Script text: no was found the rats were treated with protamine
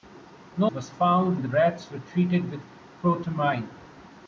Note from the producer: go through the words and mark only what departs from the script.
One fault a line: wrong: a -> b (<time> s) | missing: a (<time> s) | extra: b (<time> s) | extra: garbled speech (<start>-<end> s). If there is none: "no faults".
no faults